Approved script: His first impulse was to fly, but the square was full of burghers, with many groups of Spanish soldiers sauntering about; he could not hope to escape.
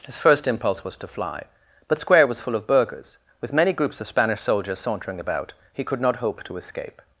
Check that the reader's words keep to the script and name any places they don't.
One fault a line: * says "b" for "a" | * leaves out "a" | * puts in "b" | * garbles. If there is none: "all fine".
* leaves out "the"